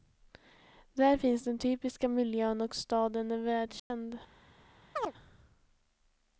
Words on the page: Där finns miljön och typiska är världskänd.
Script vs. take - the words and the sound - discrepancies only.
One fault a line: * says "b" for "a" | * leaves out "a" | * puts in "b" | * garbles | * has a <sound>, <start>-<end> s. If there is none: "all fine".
* puts in "den typiska"
* says "staden" for "typiska"
* has a dropout, 3.8-3.9 s
* has a chirp, 5.0-5.1 s